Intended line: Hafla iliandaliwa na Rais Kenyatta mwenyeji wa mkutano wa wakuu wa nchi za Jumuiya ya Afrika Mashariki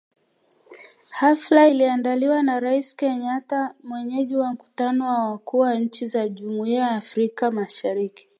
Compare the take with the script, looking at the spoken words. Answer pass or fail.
pass